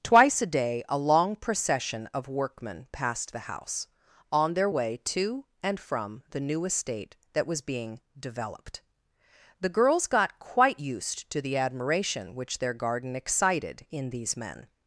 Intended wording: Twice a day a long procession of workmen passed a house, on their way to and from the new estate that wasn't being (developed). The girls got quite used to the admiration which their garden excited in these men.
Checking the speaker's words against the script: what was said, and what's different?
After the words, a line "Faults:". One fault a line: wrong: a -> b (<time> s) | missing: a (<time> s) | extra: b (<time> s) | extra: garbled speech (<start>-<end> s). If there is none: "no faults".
Twice a day a long procession of workmen passed the house, on their way to and from the new estate that was being (developed). The girls got quite used to the admiration which their garden excited in these men.
Faults:
wrong: a -> the (3.3 s)
wrong: wasn't -> was (7.5 s)